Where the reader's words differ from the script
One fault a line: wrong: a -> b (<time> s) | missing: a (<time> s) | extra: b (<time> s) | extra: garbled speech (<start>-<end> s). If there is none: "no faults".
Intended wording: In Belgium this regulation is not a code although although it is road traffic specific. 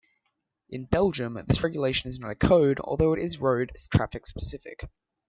missing: although (3.1 s)